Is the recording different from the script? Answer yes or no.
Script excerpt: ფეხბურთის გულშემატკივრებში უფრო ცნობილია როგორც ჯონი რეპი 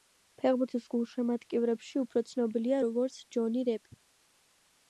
no